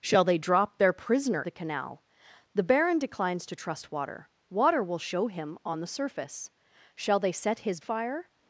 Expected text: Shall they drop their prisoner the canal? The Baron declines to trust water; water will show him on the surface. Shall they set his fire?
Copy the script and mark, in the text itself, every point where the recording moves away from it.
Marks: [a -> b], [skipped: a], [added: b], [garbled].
Shall they drop their prisoner the canal? The Baron declines to trust water; water will show him on the surface. Shall they set his fire?